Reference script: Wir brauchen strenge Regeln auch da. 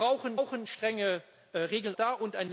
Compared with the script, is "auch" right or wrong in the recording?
wrong